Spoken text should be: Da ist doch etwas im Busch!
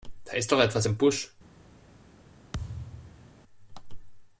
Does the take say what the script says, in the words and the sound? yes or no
no